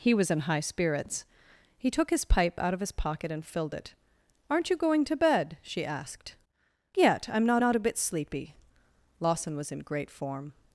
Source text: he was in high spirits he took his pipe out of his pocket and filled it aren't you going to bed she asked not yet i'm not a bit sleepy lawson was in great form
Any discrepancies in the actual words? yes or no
yes